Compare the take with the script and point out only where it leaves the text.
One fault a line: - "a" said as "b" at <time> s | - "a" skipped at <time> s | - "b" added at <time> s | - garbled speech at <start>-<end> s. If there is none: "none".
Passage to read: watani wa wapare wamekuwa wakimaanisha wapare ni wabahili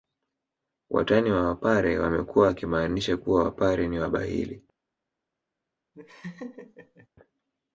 - "kuwa" added at 3.2 s